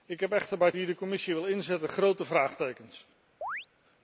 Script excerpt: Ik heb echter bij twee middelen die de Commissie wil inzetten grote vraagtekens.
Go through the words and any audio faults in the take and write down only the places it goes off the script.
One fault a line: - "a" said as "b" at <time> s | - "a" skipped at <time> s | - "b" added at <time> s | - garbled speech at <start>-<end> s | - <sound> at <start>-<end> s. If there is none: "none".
- "twee middelen" skipped at 0.7 s
- chirp at 3.4-3.7 s